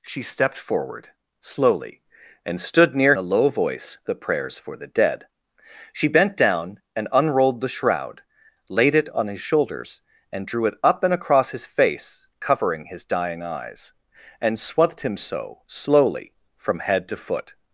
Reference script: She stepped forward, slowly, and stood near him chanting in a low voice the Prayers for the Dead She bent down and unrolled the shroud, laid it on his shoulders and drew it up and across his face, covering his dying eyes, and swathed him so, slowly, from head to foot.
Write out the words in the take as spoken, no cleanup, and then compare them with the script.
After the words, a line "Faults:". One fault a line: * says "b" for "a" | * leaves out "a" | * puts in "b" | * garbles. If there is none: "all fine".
She stepped forward, slowly, and stood near a low voice the Prayers for the Dead She bent down and unrolled the shroud, laid it on his shoulders and drew it up and across his face, covering his dying eyes, and swathed him so, slowly, from head to foot.
Faults:
* leaves out "him chanting in"